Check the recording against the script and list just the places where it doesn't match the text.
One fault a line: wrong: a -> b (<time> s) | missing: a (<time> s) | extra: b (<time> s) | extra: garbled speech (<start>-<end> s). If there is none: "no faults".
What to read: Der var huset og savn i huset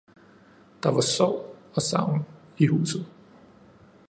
wrong: huset -> sorg (1.0 s)